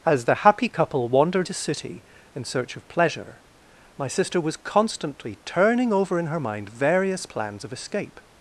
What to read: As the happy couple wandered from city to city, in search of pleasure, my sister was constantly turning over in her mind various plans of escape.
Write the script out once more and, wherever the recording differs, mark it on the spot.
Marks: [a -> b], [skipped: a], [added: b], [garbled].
As the happy couple wandered [skipped: from city] to city, in search of pleasure, my sister was constantly turning over in her mind various plans of escape.